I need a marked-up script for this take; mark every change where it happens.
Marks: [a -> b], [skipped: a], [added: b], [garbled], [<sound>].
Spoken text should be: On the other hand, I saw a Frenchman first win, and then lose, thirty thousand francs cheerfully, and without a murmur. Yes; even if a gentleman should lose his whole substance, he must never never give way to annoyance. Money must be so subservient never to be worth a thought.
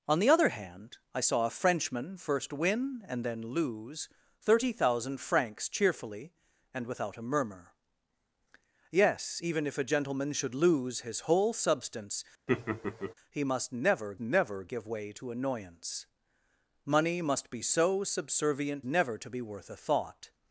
On the other hand, I saw a Frenchman first win, and then lose, thirty thousand francs cheerfully, and without a murmur. Yes; even if a gentleman should lose his whole substance, [laugh] he must never never give way to annoyance. Money must be so subservient never to be worth a thought.